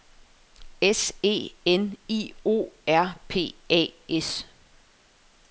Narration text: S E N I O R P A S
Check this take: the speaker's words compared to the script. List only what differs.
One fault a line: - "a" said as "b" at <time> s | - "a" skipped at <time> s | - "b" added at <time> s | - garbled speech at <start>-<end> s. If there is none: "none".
none